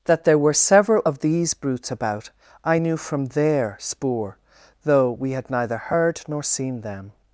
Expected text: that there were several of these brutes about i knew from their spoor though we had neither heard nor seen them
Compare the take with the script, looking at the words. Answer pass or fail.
pass